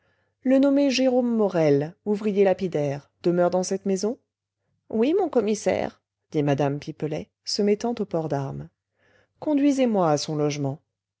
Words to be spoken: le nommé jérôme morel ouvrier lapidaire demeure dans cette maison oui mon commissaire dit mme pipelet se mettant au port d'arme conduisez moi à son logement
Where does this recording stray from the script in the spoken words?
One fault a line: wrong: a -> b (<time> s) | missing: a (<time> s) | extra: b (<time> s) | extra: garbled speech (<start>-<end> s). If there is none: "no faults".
no faults